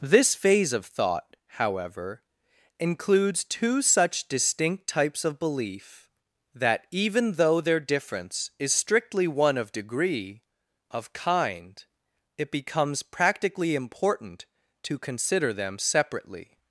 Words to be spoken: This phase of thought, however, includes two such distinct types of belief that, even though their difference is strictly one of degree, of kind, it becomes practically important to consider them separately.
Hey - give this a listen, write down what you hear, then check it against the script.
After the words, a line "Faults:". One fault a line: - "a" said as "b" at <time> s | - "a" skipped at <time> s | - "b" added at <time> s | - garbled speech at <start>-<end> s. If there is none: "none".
This phase of thought, however, includes two such distinct types of belief that, even though their difference is strictly one of degree, of kind, it becomes practically important to consider them separately.
Faults:
none